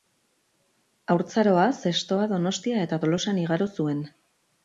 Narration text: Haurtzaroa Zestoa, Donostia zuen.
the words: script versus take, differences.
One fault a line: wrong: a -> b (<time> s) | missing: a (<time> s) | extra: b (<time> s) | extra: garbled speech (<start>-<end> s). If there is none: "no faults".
extra: eta Tolosan igaro (2.9 s)